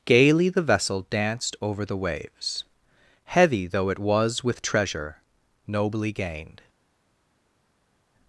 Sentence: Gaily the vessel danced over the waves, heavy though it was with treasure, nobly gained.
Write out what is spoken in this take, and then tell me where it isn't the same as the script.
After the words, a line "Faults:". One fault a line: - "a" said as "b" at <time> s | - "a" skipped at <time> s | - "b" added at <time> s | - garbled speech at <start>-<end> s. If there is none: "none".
Gaily the vessel danced over the waves, heavy though it was with treasure, nobly gained.
Faults:
none